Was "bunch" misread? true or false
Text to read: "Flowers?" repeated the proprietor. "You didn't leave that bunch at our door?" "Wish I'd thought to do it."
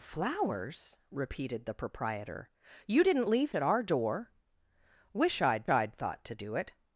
true